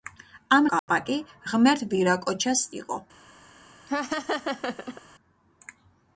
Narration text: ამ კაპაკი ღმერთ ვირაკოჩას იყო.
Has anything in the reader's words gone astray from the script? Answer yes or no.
no